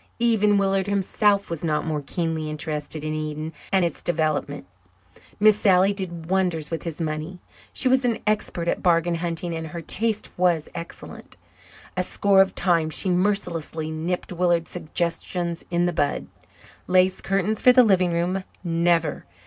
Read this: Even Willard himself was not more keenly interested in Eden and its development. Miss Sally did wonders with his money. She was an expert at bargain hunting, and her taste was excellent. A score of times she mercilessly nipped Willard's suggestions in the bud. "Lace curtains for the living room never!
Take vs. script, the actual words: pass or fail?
pass